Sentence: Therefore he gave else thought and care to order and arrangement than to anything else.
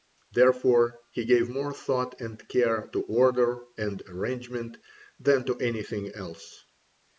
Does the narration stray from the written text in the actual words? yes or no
yes